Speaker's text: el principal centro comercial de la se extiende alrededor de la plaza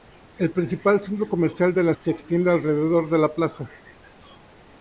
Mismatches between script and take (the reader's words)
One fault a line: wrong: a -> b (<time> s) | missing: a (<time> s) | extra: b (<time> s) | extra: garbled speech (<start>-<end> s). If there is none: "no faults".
no faults